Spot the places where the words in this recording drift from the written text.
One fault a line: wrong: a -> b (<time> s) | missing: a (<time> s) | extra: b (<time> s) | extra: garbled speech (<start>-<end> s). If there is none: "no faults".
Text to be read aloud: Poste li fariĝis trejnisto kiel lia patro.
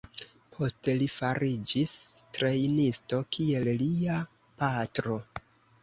no faults